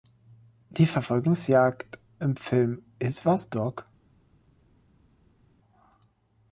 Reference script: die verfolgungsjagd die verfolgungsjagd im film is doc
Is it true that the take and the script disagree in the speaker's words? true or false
true